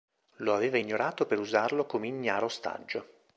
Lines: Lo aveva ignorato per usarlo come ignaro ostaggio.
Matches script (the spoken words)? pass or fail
pass